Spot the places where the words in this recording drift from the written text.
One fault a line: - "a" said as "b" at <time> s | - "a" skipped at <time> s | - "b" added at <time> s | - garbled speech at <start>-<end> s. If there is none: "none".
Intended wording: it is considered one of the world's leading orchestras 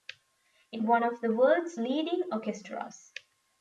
- "is considered" skipped at 0.8 s